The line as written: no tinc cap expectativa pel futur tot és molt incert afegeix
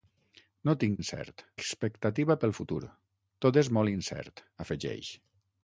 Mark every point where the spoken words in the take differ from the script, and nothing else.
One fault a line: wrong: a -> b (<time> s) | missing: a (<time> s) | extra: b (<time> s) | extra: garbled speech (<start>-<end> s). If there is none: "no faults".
wrong: cap -> incert (1.0 s)